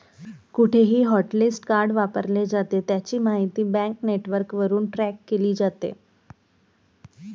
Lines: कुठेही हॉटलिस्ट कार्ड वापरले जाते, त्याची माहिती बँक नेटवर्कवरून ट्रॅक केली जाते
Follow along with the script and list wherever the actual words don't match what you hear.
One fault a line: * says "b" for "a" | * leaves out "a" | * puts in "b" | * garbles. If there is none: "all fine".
all fine